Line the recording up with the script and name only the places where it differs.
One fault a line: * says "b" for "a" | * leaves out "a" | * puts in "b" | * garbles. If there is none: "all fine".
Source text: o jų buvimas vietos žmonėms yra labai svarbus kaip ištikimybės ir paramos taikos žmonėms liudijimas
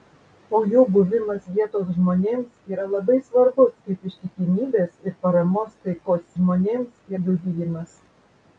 all fine